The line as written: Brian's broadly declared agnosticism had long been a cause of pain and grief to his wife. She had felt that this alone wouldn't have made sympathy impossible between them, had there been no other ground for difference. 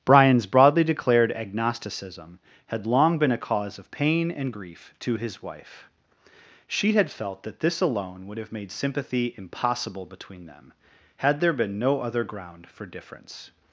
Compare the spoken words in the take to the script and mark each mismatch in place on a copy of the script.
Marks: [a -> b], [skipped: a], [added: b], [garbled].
Brian's broadly declared agnosticism had long been a cause of pain and grief to his wife. She had felt that this alone [wouldn't -> would] have made sympathy impossible between them, had there been no other ground for difference.